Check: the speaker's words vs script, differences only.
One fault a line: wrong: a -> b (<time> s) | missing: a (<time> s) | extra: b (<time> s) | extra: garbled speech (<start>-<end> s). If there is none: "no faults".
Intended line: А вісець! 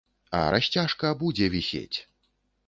extra: расцяжка будзе (0.5 s)